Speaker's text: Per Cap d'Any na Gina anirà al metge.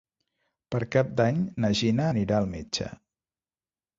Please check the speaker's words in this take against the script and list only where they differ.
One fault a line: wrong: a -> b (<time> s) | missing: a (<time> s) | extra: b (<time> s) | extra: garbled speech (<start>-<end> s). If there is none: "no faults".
no faults